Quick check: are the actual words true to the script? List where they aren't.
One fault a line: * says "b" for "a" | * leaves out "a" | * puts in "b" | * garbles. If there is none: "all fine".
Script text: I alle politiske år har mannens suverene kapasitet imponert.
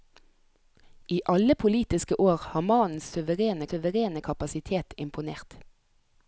* puts in "suverene"